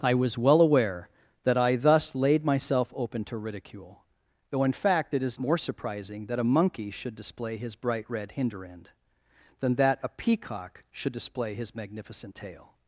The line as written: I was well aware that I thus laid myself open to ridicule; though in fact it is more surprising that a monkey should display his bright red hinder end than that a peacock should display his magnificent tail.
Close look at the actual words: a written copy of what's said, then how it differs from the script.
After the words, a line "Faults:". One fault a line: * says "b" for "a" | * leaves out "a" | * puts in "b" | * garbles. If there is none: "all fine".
I was well aware that I thus laid myself open to ridicule; though in fact it is more surprising that a monkey should display his bright red hinder end than that a peacock should display his magnificent tail.
Faults:
all fine